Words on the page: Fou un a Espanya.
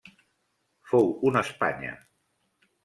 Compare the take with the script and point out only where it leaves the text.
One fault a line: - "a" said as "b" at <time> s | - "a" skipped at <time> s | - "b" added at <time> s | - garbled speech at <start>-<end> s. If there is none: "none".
none